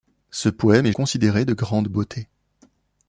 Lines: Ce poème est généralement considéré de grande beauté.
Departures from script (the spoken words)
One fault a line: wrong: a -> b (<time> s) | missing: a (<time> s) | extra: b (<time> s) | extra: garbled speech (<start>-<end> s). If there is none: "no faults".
missing: généralement (0.9 s)